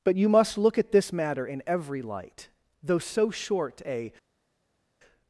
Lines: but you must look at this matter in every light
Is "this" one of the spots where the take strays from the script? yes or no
no